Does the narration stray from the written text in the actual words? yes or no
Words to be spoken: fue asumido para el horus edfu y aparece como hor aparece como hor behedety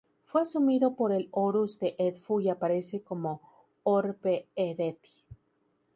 yes